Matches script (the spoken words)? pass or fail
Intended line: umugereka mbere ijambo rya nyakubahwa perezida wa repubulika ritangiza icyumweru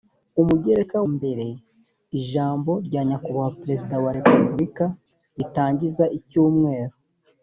pass